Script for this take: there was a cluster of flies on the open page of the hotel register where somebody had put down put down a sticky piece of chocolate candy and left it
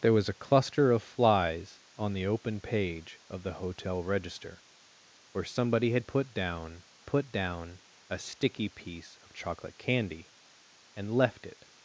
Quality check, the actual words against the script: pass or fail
pass